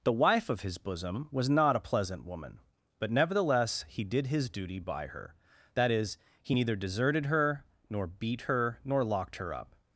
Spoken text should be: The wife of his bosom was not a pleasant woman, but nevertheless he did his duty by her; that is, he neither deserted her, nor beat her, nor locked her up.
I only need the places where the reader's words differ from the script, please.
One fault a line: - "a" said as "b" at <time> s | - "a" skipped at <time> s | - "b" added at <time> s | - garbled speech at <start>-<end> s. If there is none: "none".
none